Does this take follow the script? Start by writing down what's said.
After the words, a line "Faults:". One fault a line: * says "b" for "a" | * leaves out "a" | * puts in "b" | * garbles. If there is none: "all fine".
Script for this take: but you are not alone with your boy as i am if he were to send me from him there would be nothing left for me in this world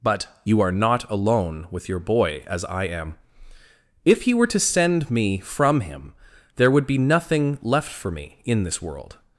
but you are not alone with your boy as i am if he were to send me from him there would be nothing left for me in this world
Faults:
all fine